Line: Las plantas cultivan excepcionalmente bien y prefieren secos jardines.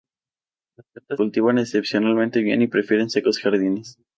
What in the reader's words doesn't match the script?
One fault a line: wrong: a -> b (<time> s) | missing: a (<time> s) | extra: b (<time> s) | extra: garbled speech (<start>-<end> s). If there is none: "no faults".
no faults